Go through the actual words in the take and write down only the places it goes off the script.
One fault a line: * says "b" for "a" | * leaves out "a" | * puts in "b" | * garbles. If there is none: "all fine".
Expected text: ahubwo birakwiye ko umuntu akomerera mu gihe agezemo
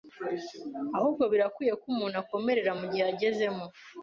all fine